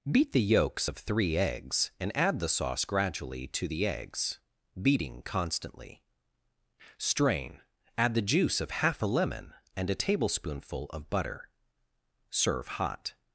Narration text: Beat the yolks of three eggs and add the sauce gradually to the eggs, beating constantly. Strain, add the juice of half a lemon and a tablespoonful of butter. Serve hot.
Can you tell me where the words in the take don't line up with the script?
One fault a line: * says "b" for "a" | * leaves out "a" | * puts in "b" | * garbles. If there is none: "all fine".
all fine